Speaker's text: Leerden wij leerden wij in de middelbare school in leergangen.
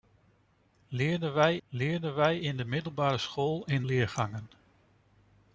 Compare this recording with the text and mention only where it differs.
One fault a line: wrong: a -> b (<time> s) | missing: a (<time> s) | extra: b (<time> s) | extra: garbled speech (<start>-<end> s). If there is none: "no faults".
no faults